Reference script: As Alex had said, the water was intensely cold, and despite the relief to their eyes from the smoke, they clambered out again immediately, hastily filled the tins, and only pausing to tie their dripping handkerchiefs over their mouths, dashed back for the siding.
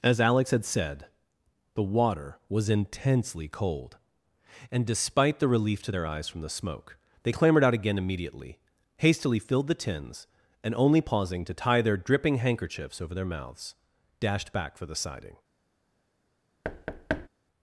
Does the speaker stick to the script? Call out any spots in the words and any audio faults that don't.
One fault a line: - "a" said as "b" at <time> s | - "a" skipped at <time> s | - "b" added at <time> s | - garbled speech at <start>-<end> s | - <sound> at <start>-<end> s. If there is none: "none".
- thud at 16.6-17.3 s